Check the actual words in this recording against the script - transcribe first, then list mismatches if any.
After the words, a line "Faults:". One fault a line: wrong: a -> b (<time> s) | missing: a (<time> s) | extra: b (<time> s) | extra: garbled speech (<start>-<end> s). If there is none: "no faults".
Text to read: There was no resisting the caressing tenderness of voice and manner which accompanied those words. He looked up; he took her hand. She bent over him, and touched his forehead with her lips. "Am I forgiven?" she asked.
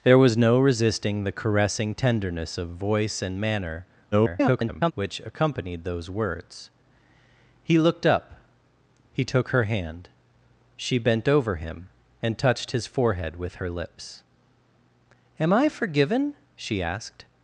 There was no resisting the caressing tenderness of voice and manner [garbled] which accompanied those words. He looked up; he took her hand. She bent over him, and touched his forehead with her lips. "Am I forgiven?" she asked.
Faults:
extra: garbled speech (4.1-4.9 s)